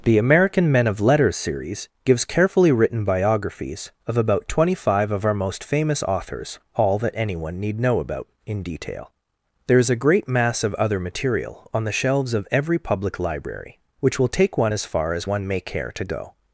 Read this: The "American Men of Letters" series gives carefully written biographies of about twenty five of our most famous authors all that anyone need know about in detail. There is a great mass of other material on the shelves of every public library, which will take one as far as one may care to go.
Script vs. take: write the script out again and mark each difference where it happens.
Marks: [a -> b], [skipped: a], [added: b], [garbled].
The "American Men of Letters" series gives carefully written biographies of about twenty five of our most famous authors all that anyone need know about in detail. There is a great mass of other material on the shelves of every public library, which will take one as far as one may care to go.